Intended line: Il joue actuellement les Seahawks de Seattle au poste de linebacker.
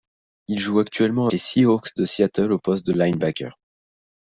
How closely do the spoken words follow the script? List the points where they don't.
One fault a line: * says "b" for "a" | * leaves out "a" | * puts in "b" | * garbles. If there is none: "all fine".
all fine